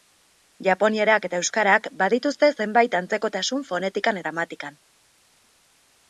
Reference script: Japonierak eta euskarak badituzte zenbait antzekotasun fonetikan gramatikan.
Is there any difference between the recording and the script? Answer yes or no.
no